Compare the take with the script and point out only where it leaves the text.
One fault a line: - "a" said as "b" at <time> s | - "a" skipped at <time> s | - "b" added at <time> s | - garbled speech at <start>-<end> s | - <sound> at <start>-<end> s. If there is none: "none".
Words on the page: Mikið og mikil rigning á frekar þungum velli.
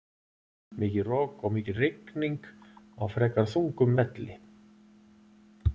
- "rok" added at 1.1 s